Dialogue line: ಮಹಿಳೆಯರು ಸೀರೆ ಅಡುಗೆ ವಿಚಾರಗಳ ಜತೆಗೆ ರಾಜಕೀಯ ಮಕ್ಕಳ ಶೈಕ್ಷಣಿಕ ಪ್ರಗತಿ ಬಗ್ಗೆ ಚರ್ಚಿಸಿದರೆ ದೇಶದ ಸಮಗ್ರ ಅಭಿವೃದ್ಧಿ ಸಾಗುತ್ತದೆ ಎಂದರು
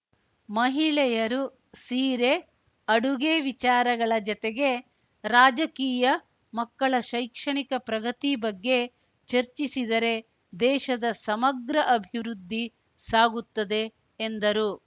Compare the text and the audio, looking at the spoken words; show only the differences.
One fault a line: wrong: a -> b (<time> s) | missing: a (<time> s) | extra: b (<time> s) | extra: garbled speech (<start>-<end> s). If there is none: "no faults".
no faults